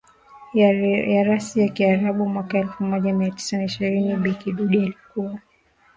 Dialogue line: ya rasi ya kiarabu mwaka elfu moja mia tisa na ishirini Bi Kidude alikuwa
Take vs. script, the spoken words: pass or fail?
pass